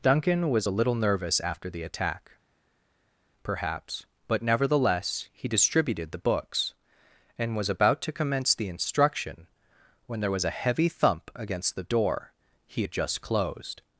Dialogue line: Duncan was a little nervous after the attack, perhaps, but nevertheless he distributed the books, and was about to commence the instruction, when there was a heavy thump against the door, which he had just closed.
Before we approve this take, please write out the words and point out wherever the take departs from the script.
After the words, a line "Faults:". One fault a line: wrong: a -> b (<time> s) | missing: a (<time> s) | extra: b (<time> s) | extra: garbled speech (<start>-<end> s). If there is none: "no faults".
Duncan was a little nervous after the attack, perhaps, but nevertheless he distributed the books, and was about to commence the instruction, when there was a heavy thump against the door, he had just closed.
Faults:
missing: which (12.3 s)